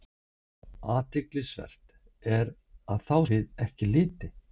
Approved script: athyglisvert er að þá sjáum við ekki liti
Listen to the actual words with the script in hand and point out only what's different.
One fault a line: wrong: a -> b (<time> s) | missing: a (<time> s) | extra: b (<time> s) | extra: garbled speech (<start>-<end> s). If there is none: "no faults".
missing: sjáum (3.2 s)